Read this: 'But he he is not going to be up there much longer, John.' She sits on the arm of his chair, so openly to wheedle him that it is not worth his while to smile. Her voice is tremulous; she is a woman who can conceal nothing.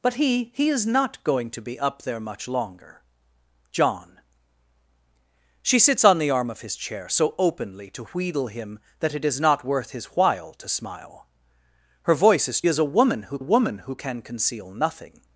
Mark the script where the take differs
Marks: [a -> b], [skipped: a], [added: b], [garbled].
'But he he is not going to be up there much longer, John.' She sits on the arm of his chair, so openly to wheedle him that it is not worth his while to smile. Her voice is [tremulous; she is a -> is a woman who] woman who can conceal nothing.